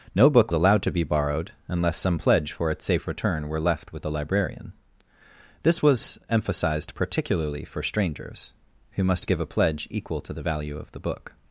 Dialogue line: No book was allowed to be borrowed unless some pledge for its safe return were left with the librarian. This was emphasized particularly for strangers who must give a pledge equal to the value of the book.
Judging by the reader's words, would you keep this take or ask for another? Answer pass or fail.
fail